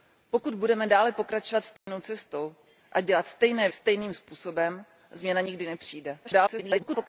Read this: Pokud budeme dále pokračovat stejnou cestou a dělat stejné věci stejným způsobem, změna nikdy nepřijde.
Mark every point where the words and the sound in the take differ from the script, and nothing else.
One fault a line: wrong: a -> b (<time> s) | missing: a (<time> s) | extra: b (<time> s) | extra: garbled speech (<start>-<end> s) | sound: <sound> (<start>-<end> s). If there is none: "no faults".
sound: dropout (1.8-1.9 s)
missing: věci (3.7 s)
extra: garbled speech (6.2-7.1 s)